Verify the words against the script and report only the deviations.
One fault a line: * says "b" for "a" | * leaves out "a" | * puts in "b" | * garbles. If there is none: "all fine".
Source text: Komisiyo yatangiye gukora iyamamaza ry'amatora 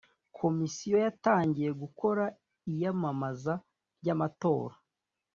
all fine